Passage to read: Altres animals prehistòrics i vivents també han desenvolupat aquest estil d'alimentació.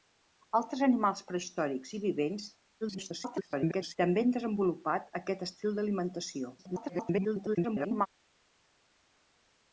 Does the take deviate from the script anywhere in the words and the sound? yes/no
yes